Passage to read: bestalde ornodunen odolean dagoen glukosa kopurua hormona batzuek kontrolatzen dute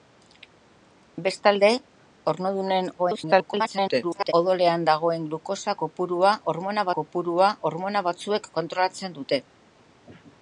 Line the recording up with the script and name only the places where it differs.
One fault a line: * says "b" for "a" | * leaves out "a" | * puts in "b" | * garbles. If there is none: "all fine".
* garbles
* puts in "kopurua hormona"